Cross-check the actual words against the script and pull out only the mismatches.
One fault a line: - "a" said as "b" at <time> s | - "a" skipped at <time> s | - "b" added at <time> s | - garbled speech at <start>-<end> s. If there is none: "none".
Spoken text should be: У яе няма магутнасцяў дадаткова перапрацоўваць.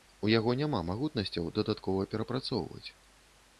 - "яе" said as "яго" at 0.3 s